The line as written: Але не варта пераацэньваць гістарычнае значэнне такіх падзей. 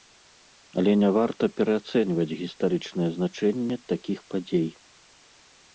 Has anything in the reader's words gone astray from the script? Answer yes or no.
no